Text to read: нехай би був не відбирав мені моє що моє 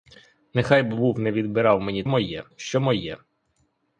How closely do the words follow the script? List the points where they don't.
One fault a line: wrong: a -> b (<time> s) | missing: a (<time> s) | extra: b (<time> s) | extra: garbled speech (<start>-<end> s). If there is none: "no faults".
no faults